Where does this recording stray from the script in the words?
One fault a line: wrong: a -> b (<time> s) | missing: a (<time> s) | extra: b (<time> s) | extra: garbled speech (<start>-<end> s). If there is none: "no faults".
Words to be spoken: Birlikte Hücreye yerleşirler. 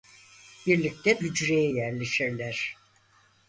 no faults